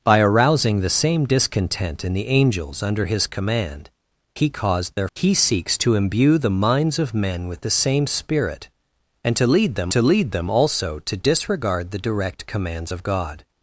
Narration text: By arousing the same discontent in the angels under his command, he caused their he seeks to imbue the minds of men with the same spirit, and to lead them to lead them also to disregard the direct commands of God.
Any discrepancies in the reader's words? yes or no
no